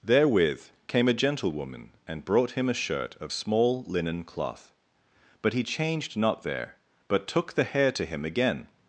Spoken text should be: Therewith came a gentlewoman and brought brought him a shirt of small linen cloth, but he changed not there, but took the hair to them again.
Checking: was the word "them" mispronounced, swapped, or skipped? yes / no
yes